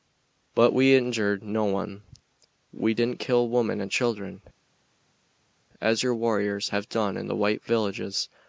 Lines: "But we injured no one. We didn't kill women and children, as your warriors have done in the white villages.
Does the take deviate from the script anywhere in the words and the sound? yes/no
no